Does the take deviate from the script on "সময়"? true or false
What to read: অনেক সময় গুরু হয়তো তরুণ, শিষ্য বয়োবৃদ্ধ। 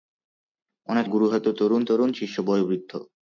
true